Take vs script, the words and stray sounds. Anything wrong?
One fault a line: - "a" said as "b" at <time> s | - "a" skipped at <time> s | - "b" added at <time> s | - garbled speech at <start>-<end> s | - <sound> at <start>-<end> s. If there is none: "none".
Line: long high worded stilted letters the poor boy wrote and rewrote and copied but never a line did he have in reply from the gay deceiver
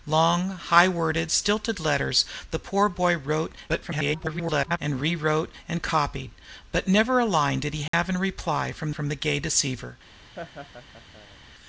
- garbled speech at 3.7-4.8 s
- dropout at 7.9-7.9 s
- "from" added at 8.9 s
- laugh at 10.3-11.4 s